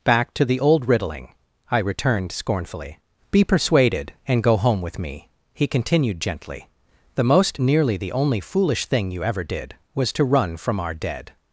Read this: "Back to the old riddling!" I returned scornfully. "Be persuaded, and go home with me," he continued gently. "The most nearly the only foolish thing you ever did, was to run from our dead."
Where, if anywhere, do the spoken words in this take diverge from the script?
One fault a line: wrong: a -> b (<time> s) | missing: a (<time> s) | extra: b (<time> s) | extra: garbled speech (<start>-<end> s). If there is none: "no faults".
no faults